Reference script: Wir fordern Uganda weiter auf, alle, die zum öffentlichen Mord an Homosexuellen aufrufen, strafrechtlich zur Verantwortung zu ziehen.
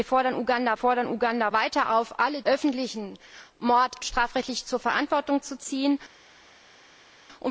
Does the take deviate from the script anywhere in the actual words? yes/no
yes